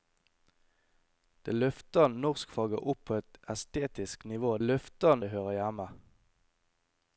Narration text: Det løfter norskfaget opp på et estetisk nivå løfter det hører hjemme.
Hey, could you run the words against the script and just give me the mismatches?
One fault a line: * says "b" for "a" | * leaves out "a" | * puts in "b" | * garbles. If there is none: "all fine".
all fine